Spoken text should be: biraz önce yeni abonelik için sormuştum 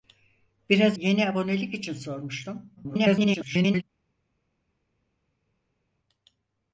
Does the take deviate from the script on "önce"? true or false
true